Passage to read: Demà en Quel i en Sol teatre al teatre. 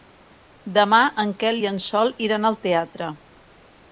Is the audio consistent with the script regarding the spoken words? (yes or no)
no